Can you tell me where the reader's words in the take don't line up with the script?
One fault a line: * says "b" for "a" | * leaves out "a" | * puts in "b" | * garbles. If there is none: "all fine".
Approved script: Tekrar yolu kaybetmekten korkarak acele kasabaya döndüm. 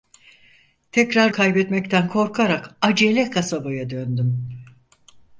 * leaves out "yolu"